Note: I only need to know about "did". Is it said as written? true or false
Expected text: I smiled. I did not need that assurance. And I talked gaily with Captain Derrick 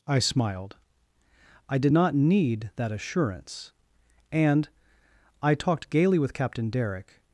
true